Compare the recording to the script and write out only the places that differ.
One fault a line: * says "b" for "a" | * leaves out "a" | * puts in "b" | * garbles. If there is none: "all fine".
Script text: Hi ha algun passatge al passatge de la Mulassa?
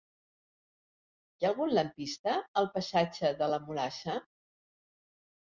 * says "lampista" for "passatge"